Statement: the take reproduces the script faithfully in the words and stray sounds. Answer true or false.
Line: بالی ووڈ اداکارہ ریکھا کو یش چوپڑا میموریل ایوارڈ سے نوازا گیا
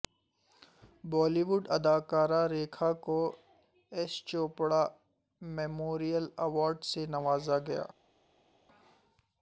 true